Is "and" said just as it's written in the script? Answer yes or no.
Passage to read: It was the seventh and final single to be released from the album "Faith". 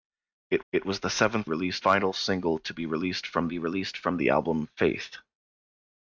no